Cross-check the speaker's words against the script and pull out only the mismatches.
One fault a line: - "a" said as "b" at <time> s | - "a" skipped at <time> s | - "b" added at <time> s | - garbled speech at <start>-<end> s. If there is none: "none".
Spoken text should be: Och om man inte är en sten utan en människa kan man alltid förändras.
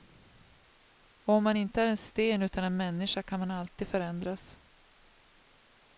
none